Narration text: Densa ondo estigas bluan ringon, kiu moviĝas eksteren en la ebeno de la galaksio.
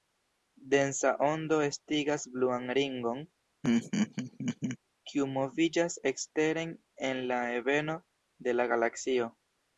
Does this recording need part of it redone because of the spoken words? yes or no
no